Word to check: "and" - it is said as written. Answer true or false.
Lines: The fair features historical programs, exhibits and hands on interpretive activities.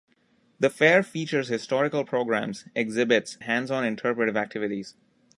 false